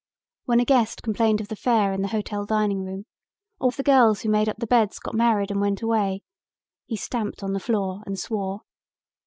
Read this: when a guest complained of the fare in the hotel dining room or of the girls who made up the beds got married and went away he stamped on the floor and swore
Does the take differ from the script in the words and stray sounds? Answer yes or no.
no